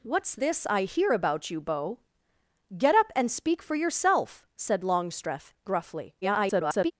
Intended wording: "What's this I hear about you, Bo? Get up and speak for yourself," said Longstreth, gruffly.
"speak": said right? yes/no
yes